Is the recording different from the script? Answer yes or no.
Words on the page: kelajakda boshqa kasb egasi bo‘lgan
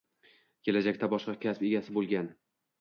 no